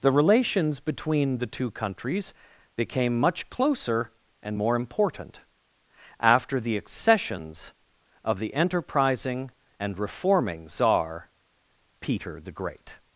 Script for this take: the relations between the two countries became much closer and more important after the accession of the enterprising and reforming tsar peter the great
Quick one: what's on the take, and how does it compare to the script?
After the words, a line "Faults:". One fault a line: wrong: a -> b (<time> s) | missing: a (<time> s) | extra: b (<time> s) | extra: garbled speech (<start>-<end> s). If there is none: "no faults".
the relations between the two countries became much closer and more important after the accessions of the enterprising and reforming tsar peter the great
Faults:
wrong: accession -> accessions (6.8 s)